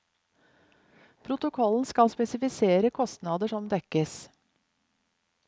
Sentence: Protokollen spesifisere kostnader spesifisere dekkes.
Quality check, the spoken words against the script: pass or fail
fail